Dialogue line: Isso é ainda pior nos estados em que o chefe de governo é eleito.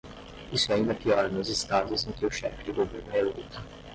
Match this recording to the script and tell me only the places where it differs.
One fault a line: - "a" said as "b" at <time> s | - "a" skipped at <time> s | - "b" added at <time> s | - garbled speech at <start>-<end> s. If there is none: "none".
none